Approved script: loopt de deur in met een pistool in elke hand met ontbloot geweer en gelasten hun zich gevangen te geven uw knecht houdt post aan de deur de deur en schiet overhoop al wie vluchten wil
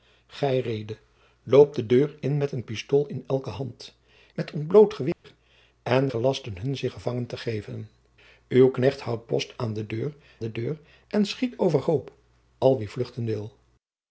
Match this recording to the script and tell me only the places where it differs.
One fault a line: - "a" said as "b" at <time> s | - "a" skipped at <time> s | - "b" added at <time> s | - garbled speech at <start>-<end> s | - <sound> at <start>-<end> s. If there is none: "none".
- dropout at 5.1-5.2 s